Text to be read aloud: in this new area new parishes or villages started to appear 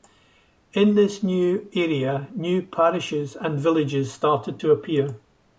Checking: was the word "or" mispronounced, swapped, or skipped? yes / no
yes